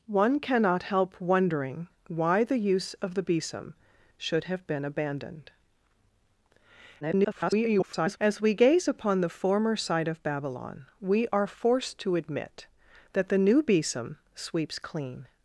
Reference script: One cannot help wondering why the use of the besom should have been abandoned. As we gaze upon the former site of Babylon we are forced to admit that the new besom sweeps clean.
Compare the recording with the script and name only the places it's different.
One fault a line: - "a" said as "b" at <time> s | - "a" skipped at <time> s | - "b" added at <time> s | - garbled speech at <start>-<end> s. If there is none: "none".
- garbled speech at 7.0-8.2 s